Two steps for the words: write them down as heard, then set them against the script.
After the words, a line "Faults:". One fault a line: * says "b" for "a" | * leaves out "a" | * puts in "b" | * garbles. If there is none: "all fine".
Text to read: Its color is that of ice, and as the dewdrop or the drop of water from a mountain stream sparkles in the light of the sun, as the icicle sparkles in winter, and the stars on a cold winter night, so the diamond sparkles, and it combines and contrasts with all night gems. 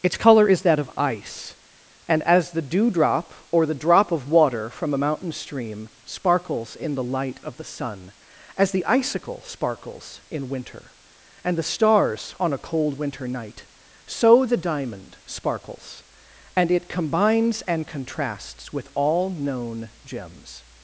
Its color is that of ice, and as the dewdrop or the drop of water from a mountain stream sparkles in the light of the sun, as the icicle sparkles in winter, and the stars on a cold winter night, so the diamond sparkles, and it combines and contrasts with all known gems.
Faults:
* says "known" for "night"